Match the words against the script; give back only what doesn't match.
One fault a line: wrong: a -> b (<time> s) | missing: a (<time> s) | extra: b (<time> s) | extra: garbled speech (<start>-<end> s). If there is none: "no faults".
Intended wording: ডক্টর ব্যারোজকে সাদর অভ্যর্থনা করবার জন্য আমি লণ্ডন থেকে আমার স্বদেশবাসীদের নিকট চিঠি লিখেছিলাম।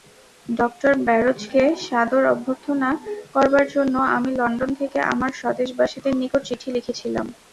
no faults